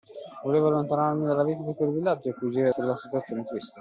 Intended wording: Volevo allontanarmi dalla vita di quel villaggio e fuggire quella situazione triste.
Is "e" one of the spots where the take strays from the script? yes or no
no